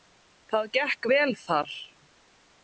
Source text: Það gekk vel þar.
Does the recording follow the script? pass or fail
pass